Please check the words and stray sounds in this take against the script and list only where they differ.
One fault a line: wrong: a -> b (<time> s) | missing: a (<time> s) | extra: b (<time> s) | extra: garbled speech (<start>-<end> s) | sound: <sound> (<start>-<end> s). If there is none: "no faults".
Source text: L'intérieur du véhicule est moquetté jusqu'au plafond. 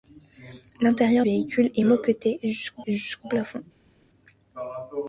missing: du (1.3 s)
extra: jusqu'au (2.9 s)